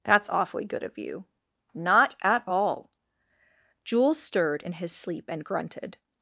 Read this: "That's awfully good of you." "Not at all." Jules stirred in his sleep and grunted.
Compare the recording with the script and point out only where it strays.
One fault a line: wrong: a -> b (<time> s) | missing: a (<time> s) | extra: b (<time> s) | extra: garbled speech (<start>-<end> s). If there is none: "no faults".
no faults